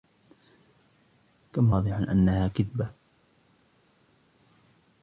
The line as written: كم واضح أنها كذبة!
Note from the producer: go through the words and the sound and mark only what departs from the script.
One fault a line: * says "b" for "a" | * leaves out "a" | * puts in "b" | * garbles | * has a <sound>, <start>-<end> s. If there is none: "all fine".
all fine